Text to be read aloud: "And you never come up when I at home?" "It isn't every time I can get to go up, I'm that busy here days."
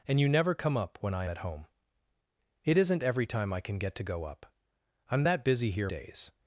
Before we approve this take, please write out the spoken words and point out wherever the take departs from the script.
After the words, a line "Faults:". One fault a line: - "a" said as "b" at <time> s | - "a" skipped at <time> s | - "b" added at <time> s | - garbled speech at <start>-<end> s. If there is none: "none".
"And you never come up when I at home?" "It isn't every time I can get to go up, I'm that busy here days."
Faults:
none